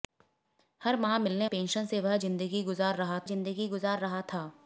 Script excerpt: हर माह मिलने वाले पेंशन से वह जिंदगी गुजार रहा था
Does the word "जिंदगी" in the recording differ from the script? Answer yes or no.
no